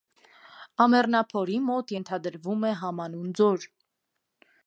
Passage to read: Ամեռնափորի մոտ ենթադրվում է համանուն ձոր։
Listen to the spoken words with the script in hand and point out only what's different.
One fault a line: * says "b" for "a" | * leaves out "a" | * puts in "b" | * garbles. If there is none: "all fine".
all fine